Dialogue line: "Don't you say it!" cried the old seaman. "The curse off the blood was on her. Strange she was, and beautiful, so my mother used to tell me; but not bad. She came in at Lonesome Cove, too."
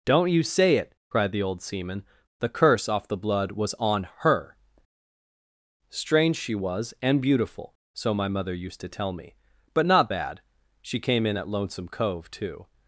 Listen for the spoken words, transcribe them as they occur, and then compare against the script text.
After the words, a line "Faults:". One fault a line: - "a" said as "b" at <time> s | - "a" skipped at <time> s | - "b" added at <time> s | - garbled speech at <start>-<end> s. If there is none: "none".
"Don't you say it!" cried the old seaman. "The curse off the blood was on her. Strange she was, and beautiful, so my mother used to tell me; but not bad. She came in at Lonesome Cove, too."
Faults:
none